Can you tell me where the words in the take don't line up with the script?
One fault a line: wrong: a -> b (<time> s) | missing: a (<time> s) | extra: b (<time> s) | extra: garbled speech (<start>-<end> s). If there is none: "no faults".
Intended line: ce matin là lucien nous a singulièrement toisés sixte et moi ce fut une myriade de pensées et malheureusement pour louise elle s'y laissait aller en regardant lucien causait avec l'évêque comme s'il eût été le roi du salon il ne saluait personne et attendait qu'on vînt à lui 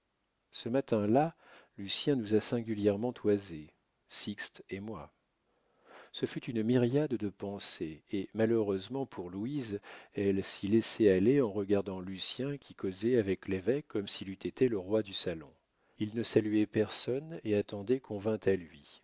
extra: qui (12.6 s)